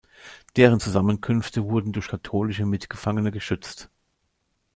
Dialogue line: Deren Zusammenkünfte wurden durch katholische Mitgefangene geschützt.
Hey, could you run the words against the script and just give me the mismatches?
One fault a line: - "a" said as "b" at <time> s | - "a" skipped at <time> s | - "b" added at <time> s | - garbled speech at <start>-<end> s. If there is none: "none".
none